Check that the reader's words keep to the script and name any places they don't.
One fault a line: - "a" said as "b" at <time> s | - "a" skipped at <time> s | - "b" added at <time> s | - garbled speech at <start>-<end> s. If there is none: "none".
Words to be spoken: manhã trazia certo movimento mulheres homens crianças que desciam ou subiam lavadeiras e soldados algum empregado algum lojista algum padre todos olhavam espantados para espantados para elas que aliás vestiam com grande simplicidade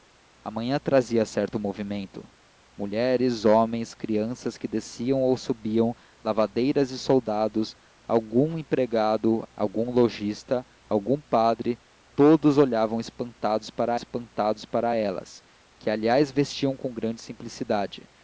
none